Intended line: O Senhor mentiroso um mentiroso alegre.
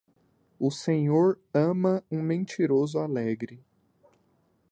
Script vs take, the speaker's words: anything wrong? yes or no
yes